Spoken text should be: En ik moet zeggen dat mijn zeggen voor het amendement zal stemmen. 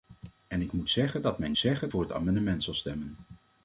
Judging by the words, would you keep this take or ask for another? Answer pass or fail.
pass